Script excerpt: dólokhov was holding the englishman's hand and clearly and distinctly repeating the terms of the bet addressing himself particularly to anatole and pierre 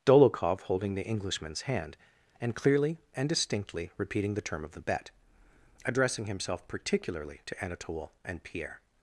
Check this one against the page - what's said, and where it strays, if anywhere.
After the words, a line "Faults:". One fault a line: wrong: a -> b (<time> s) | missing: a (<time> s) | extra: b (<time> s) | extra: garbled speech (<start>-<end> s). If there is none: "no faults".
dólokhov holding the englishman's hand and clearly and distinctly repeating the term of the bet addressing himself particularly to anatole and pierre
Faults:
missing: was (0.6 s)
wrong: terms -> term (4.4 s)